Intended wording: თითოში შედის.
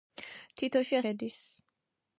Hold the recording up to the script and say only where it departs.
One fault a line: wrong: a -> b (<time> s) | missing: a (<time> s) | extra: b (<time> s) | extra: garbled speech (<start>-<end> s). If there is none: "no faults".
no faults